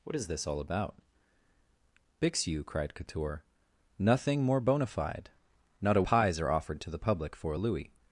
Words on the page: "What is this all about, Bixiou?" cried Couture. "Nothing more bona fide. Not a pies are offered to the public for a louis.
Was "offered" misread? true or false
false